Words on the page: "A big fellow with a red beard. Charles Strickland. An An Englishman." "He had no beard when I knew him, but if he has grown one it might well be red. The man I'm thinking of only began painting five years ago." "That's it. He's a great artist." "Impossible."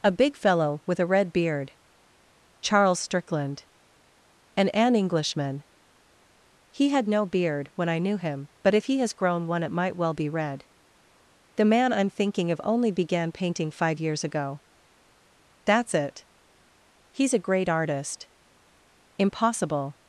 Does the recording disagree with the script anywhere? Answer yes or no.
no